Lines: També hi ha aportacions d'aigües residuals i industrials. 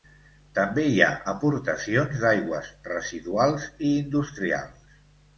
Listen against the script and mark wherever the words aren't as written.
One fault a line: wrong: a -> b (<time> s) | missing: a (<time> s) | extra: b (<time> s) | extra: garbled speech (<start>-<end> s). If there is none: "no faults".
no faults